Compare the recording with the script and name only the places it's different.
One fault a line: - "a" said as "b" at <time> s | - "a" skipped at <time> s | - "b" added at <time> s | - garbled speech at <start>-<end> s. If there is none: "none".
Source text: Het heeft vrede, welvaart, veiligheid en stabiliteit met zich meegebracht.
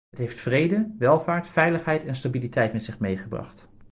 none